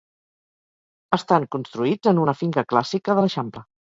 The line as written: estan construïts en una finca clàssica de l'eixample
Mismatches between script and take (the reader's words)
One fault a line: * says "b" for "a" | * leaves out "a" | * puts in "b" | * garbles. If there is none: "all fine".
all fine